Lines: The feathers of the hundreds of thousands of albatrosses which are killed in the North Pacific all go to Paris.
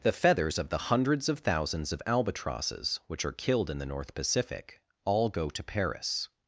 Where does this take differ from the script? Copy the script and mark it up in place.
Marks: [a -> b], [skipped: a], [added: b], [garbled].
The feathers of the hundreds of thousands of albatrosses which are killed in the North Pacific all go to Paris.